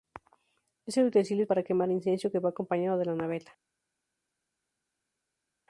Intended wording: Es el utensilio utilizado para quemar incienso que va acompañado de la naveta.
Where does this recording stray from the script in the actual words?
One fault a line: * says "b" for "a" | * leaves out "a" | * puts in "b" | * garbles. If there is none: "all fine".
* leaves out "utilizado"